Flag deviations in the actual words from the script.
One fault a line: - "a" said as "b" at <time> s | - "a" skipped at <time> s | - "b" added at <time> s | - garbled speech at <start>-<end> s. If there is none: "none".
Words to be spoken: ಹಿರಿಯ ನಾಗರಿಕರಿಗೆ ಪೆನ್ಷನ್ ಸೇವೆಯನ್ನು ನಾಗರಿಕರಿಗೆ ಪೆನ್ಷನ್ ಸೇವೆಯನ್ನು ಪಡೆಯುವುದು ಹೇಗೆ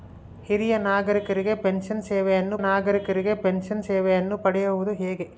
none